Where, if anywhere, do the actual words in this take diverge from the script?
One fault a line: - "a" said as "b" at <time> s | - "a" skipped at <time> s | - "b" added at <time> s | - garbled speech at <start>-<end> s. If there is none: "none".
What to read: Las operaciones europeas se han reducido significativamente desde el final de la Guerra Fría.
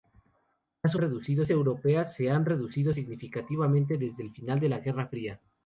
- "operaciones" said as "reducido" at 1.0 s